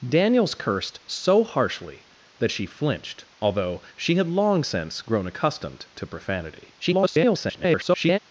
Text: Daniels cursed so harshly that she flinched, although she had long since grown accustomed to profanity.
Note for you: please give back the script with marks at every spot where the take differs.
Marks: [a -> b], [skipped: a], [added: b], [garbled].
Daniels cursed so harshly that she flinched, although she had long since grown accustomed to profanity. [garbled]